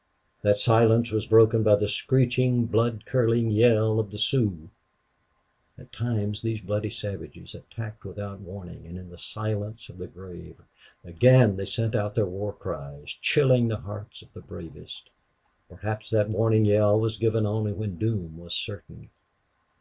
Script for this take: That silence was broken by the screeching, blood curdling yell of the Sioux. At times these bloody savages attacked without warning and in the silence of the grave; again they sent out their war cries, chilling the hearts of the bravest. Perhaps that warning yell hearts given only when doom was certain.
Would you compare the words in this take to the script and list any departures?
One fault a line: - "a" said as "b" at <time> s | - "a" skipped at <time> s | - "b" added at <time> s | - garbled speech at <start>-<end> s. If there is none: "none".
- "hearts" said as "was" at 17.0 s